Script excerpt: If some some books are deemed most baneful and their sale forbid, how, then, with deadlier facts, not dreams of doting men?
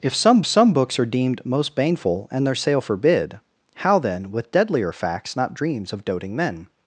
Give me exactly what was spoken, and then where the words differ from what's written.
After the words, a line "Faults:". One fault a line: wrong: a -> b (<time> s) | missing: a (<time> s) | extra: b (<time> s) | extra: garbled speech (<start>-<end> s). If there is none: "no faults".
If some some books are deemed most baneful and their sale forbid, how, then, with deadlier facts, not dreams of doting men?
Faults:
no faults